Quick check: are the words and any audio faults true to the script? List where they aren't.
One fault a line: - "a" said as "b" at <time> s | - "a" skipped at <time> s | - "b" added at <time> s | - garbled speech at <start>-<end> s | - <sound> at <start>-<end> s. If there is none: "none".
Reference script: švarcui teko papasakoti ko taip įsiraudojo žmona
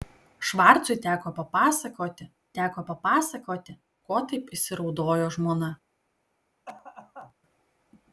- "teko papasakoti" added at 2.6 s
- cough at 6.7-7.3 s